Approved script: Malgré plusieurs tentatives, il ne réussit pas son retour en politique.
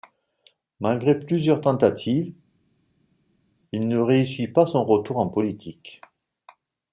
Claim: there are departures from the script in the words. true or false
false